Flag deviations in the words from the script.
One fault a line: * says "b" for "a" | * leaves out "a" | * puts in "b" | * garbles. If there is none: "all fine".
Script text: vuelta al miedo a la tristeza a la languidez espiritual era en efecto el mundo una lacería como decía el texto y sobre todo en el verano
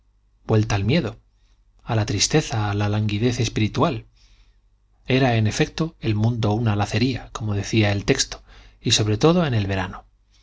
all fine